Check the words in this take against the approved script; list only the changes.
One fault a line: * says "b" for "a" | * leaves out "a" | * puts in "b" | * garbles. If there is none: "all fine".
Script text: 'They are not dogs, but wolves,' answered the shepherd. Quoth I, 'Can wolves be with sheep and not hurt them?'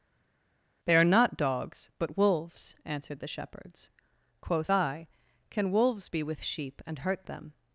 * says "shepherds" for "shepherd"
* leaves out "not"